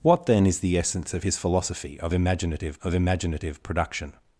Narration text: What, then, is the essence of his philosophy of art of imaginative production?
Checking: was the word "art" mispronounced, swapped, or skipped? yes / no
yes